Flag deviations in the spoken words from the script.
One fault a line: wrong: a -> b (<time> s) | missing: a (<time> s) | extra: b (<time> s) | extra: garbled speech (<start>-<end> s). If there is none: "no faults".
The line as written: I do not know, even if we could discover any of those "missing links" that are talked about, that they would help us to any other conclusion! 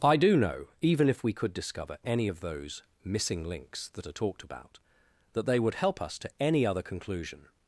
missing: not (0.3 s)